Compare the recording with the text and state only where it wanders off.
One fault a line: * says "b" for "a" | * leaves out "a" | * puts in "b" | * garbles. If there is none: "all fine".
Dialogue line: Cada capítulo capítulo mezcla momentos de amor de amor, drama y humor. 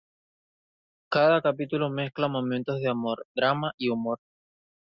* leaves out "capítulo"
* leaves out "de amor"